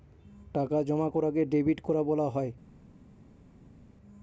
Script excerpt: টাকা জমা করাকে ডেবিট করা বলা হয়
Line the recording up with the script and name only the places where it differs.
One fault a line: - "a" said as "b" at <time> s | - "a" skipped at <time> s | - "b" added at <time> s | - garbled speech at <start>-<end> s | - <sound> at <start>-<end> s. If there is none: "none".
none